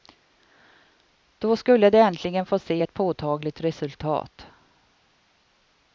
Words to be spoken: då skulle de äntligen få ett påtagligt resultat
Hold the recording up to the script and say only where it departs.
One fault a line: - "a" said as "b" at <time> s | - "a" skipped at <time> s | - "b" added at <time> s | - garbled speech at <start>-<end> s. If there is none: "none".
- "se" added at 2.6 s